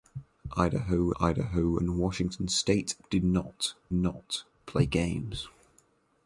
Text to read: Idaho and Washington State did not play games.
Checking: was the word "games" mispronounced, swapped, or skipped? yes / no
no